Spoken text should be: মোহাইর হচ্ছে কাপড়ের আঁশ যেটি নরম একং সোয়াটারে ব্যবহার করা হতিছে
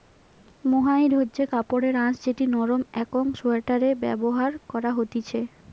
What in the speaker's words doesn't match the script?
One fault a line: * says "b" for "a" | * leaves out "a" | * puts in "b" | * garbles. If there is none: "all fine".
all fine